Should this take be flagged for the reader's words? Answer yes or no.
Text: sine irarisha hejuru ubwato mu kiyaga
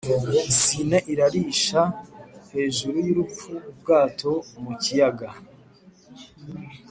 yes